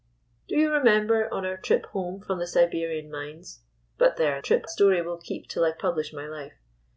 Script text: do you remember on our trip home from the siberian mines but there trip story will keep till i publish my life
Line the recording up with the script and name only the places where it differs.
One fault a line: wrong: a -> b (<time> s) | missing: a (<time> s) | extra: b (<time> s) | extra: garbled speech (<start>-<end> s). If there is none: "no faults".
no faults